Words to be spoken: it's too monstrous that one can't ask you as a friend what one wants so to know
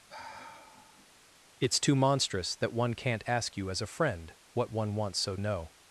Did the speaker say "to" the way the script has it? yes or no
no